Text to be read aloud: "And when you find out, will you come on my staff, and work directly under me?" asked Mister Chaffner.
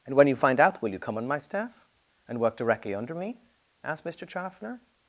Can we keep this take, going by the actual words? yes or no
yes